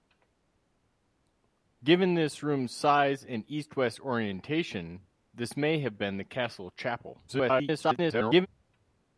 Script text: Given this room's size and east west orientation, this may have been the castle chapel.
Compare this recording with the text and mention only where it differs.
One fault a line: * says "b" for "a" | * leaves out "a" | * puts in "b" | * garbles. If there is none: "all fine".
* garbles